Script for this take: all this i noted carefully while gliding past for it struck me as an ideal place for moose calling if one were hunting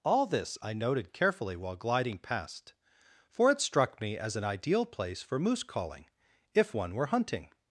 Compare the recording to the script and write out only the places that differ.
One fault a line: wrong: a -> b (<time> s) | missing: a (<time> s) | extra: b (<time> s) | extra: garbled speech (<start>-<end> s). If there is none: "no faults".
no faults